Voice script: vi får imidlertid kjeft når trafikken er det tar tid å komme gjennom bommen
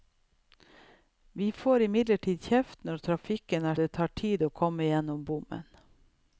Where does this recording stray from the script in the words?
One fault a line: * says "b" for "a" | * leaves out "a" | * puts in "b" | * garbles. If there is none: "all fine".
all fine